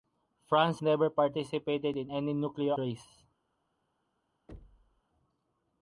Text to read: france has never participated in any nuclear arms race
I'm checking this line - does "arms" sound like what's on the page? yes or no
no